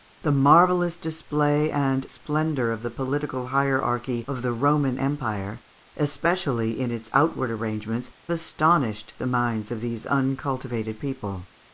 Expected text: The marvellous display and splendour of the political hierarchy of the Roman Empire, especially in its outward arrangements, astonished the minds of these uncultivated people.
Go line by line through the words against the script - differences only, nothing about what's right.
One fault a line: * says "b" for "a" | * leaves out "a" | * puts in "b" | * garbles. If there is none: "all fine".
all fine